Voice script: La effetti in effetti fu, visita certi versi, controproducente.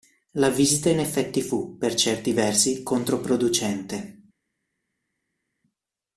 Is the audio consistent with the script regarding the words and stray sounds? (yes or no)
no